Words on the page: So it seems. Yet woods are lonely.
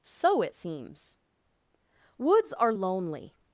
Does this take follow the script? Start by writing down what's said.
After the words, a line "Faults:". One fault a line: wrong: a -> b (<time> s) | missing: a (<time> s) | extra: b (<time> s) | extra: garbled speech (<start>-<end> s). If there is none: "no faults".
So it seems. woods are lonely.
Faults:
missing: Yet (1.2 s)